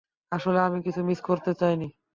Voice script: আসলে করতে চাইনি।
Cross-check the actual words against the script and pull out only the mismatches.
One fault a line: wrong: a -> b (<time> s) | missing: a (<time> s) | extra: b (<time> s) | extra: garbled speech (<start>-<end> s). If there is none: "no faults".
extra: আমি কিছু মিস (0.6 s)